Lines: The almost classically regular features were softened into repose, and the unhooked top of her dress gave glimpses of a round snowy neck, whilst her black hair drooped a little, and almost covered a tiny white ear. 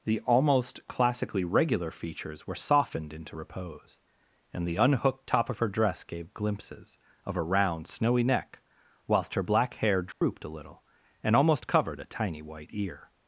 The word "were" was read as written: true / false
true